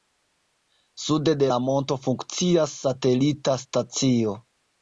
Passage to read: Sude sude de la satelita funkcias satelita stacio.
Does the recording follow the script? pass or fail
fail